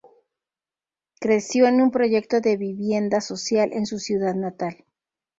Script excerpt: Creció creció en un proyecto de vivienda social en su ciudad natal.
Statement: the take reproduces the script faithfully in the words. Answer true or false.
false